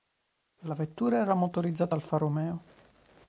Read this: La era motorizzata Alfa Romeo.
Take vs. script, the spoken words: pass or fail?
fail